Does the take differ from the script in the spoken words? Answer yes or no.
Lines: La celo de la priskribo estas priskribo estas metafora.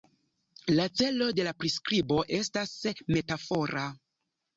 yes